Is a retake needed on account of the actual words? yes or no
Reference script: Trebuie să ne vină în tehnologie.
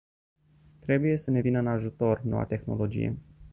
yes